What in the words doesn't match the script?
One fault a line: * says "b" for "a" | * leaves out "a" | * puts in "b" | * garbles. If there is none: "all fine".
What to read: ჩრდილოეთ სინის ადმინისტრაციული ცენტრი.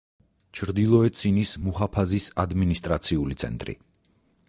* puts in "მუჰაფაზის"